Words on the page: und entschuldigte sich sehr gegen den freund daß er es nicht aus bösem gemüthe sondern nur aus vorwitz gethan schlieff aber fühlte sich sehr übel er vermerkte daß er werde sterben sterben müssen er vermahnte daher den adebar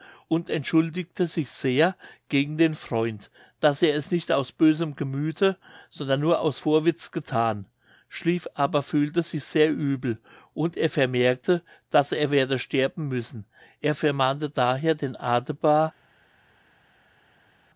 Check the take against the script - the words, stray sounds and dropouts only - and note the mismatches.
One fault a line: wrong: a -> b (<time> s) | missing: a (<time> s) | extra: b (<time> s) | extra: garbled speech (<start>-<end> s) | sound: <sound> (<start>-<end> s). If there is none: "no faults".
extra: und (10.5 s)
missing: sterben (13.1 s)